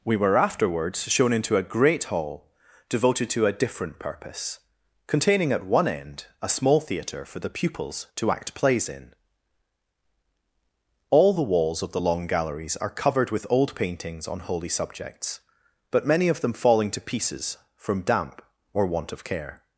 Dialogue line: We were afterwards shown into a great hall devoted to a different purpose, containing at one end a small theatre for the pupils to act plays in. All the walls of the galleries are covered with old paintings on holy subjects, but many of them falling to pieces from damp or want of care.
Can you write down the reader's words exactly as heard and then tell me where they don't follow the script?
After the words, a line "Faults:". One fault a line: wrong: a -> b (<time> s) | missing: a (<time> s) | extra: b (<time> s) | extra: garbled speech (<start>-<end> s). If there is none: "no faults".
We were afterwards shown into a great hall devoted to a different purpose, containing at one end a small theatre for the pupils to act plays in. All the walls of the long galleries are covered with old paintings on holy subjects, but many of them falling to pieces from damp or want of care.
Faults:
extra: long (12.0 s)